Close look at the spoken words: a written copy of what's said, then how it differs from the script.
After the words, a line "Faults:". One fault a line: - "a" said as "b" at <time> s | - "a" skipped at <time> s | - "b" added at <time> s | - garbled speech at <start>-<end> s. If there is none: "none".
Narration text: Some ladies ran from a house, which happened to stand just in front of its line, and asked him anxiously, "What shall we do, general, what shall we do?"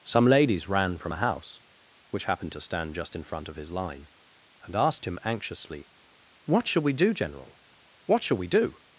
Some ladies ran from a house, which happened to stand just in front of his line, and asked him anxiously, "What shall we do, general, what shall we do?"
Faults:
- "its" said as "his" at 3.6 s